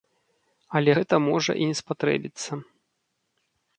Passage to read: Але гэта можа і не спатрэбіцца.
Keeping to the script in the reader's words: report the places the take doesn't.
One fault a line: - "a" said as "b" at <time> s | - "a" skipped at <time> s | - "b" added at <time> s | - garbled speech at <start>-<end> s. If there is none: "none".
none